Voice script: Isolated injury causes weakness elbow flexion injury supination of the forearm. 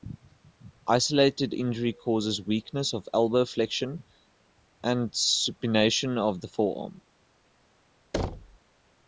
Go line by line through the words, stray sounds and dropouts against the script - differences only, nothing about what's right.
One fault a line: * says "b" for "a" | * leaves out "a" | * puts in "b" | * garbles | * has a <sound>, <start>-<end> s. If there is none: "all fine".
* puts in "of"
* says "and" for "injury"
* has a thud, 8.1-8.6 s